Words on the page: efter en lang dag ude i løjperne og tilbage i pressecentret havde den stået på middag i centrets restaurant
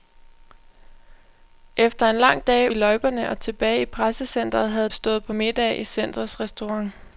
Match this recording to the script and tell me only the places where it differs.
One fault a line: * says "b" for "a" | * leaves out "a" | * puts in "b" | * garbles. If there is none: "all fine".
* leaves out "ude"
* leaves out "den"